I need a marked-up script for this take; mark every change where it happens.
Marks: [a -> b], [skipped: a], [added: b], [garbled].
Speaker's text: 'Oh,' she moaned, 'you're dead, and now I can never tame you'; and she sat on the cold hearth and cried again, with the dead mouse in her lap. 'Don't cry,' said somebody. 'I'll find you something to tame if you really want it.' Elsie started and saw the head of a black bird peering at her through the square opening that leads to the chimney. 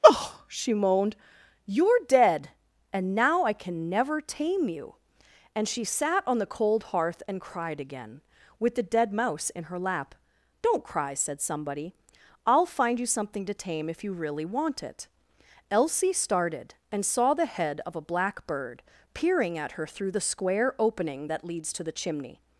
'Oh,' she moaned, 'you're dead, and now I can never tame you'; and she sat on the cold hearth and cried again, with the dead mouse in her lap. 'Don't cry,' said somebody. 'I'll find you something to tame if you really want it.' Elsie started and saw the head of a black bird peering at her through the square opening that leads to the chimney.